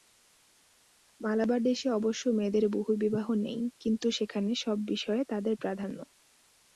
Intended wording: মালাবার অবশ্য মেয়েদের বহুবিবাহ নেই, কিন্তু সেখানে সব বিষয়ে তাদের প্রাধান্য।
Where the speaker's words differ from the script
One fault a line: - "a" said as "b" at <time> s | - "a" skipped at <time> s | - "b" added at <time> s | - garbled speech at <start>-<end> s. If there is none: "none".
- "দেশে" added at 1.6 s